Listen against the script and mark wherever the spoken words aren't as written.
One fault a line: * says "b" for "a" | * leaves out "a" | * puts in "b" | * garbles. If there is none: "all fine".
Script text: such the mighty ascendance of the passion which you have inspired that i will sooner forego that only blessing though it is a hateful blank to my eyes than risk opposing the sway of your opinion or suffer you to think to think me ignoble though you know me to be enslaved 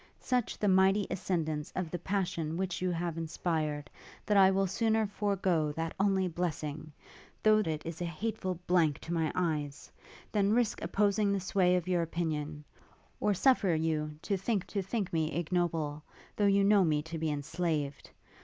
all fine